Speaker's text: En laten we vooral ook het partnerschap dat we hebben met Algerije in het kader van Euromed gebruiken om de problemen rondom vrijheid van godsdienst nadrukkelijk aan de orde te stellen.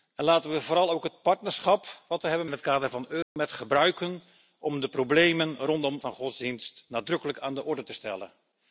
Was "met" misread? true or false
true